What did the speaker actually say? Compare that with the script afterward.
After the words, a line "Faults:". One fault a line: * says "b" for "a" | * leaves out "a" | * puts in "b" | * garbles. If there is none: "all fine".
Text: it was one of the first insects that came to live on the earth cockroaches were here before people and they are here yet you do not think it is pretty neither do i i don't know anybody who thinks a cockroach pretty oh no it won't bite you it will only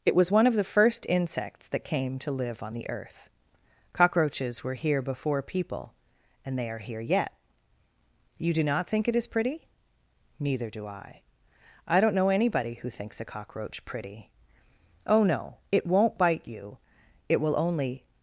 it was one of the first insects that came to live on the earth cockroaches were here before people and they are here yet you do not think it is pretty neither do i i don't know anybody who thinks a cockroach pretty oh no it won't bite you it will only
Faults:
all fine